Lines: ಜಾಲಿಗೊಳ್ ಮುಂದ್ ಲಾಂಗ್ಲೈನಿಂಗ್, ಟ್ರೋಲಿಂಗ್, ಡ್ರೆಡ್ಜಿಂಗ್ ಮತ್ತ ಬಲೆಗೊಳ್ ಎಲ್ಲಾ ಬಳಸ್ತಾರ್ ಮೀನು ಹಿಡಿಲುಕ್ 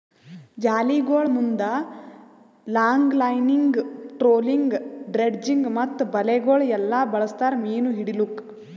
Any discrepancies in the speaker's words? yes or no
no